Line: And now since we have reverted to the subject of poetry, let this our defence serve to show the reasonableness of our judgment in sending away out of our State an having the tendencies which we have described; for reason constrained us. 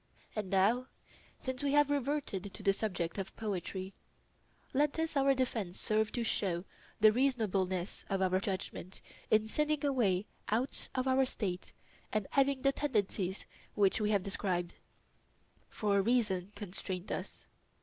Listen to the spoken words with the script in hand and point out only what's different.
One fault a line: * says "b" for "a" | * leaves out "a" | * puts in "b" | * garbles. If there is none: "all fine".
all fine